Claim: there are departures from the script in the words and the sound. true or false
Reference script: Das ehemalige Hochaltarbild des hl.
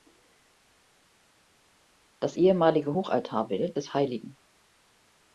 false